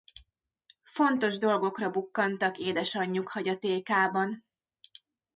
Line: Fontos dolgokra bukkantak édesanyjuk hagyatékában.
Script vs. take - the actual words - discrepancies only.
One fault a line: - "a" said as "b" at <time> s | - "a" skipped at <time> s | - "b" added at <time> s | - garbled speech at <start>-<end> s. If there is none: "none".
none